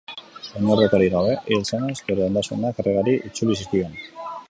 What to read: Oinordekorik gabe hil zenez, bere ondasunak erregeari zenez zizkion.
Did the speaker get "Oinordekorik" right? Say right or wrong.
right